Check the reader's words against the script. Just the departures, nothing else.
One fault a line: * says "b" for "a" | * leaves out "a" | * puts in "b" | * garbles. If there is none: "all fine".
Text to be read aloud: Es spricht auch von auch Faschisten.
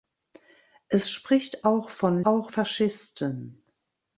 all fine